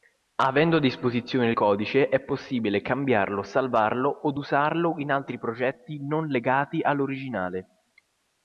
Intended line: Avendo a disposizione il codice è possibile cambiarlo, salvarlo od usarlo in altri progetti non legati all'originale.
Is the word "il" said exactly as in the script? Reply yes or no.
no